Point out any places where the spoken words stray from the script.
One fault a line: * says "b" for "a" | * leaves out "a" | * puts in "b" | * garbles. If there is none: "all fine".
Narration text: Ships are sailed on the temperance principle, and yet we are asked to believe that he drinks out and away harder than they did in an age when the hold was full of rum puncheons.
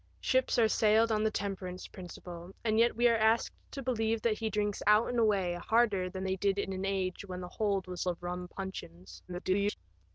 * leaves out "full"
* garbles